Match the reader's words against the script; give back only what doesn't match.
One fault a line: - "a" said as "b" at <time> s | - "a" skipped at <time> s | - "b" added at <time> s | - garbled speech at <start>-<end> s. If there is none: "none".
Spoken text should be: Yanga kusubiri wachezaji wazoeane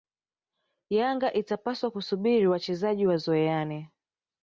- "itapaswa" added at 1.3 s